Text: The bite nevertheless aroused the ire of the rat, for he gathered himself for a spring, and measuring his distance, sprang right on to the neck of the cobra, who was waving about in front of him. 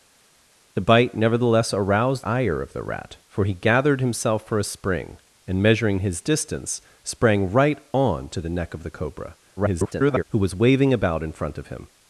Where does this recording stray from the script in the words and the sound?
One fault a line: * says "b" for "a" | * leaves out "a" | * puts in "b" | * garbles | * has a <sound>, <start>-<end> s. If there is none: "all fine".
* leaves out "the"
* garbles